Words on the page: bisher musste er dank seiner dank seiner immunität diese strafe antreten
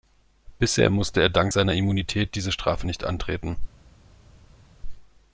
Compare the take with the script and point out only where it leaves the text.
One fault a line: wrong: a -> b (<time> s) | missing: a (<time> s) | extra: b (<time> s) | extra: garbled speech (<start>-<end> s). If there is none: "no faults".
missing: dank seiner (1.7 s)
extra: nicht (2.8 s)